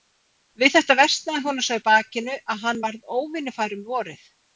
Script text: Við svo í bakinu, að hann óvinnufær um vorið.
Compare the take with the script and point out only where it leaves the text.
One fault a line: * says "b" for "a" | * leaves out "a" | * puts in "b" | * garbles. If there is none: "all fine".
* puts in "þetta versnaði honum"
* puts in "varð"